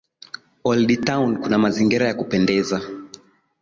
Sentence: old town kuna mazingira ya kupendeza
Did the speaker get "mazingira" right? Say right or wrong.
right